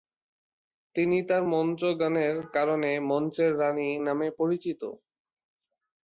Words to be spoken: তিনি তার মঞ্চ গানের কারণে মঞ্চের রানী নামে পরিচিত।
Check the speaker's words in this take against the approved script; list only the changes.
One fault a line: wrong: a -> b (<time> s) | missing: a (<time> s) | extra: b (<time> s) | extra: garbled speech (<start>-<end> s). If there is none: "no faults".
no faults